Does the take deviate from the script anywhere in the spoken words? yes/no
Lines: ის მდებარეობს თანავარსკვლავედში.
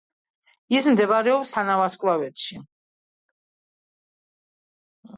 no